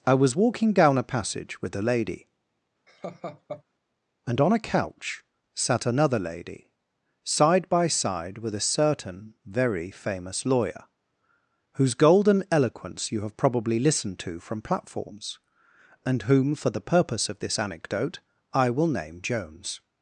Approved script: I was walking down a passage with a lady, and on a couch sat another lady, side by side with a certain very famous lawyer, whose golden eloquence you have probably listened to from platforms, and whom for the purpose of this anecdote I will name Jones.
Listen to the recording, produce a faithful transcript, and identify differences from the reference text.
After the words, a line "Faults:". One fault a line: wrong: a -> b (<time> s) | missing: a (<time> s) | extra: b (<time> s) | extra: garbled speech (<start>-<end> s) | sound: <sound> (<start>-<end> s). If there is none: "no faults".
I was walking down a passage with a lady, and on a couch sat another lady, side by side with a certain very famous lawyer, whose golden eloquence you have probably listened to from platforms, and whom for the purpose of this anecdote I will name Jones.
Faults:
sound: laugh (2.9-3.6 s)